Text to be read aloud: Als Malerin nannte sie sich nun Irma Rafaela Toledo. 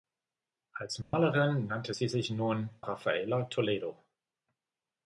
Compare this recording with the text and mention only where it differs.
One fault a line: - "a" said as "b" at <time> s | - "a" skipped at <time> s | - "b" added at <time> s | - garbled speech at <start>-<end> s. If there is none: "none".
- "Irma" skipped at 2.7 s